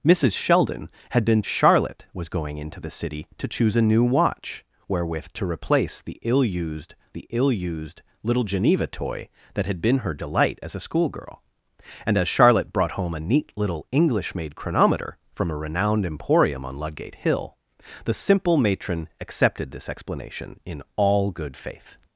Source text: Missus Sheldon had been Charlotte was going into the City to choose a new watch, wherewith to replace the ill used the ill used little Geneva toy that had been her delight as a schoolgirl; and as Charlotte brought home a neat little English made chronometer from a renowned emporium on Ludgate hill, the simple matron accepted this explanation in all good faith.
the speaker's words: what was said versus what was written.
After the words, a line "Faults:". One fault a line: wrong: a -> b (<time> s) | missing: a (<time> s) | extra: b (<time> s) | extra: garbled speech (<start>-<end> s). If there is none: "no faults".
Missus Sheldon had been Charlotte was going into the City to choose a new watch, wherewith to replace the ill used the ill used little Geneva toy that had been her delight as a schoolgirl; and as Charlotte brought home a neat little English made chronometer from a renowned emporium on Ludgate hill, the simple matron accepted this explanation in all good faith.
Faults:
no faults